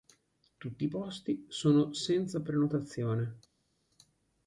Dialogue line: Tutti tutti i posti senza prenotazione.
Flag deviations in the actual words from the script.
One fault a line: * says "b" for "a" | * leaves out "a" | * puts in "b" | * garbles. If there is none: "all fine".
* leaves out "tutti"
* puts in "sono"